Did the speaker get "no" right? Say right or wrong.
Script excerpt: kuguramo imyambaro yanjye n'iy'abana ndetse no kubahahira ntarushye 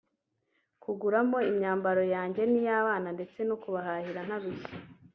right